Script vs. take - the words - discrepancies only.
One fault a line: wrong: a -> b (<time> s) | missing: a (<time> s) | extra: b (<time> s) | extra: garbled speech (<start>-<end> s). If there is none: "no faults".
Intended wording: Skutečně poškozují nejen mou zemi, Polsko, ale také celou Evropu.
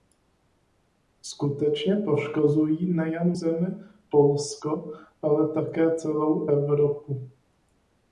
missing: mou (3.4 s)